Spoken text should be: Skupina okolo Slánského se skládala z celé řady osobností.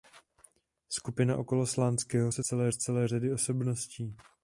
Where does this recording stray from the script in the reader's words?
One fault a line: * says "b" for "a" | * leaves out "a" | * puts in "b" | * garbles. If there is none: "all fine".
* says "celé" for "skládala"